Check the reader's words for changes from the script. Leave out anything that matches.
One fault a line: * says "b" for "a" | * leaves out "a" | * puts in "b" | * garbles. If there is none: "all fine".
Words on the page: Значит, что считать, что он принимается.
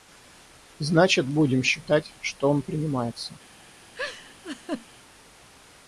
* says "будем" for "что"